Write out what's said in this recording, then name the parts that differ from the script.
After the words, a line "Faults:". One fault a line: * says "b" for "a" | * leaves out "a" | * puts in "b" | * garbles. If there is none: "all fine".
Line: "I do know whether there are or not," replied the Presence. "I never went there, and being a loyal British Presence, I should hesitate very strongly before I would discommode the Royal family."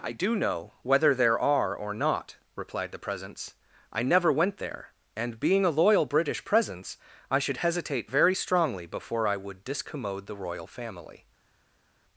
"I do know whether there are or not," replied the Presence. "I never went there, and being a loyal British Presence, I should hesitate very strongly before I would discommode the Royal family."
Faults:
all fine